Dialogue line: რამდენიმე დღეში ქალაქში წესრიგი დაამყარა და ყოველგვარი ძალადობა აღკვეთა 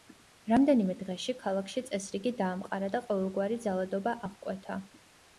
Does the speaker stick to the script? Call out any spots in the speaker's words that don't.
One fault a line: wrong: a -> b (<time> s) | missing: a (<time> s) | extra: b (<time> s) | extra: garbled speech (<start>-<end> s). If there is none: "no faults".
no faults